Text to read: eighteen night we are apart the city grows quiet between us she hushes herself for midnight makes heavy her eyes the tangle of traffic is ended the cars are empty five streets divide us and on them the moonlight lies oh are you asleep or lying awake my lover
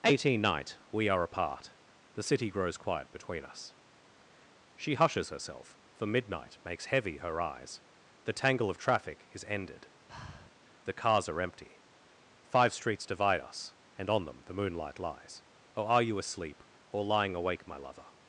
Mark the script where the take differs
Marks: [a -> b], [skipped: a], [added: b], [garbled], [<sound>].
eighteen night we are apart the city grows quiet between us she hushes herself for midnight makes heavy her eyes the tangle of traffic is ended [breath] the cars are empty five streets divide us and on them the moonlight lies oh are you asleep or lying awake my lover